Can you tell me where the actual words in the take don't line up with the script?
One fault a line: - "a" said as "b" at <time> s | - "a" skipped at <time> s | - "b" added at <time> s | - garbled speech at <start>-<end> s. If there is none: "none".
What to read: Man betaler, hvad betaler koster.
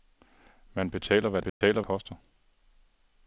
none